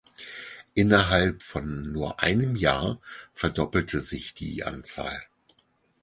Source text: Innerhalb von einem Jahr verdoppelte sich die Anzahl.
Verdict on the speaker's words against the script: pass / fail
fail